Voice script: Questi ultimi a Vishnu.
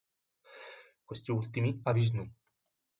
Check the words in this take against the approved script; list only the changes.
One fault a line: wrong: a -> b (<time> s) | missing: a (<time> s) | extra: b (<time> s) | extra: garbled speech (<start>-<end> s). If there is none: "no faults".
no faults